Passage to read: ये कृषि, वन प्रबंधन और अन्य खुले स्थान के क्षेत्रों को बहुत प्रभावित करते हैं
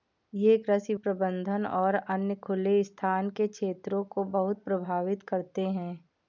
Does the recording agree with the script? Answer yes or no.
no